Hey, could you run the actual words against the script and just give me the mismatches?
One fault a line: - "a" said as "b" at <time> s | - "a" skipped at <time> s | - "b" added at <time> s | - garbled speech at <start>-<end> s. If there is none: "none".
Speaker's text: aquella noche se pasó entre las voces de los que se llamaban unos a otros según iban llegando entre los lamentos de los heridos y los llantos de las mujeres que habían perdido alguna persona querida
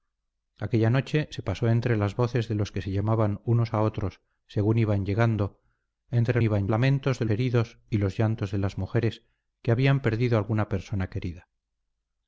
- "los" said as "iban" at 6.4 s
- "los" skipped at 7.2 s